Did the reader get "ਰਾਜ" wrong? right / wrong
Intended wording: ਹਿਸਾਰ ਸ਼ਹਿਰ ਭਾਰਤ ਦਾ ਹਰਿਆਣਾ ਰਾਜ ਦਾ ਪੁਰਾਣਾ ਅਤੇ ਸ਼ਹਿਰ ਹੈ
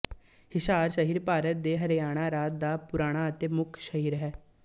right